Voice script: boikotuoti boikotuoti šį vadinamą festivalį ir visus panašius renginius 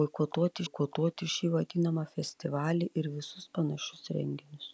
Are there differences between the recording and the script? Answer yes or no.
no